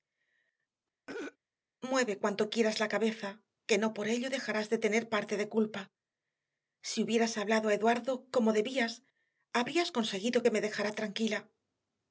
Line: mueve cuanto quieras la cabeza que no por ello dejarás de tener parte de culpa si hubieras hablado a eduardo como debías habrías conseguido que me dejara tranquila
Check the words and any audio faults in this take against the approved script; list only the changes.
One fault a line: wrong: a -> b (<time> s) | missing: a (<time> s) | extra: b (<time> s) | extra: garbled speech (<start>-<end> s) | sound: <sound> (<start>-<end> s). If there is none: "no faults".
sound: throat clearing (1.1-1.4 s)